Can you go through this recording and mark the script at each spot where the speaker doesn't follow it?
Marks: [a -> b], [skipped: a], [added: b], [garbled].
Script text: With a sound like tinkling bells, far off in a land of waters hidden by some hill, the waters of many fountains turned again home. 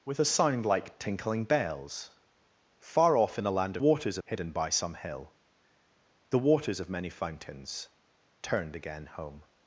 With a sound like tinkling bells, far off in a land of waters hidden by some hill, the waters of many fountains turned again home.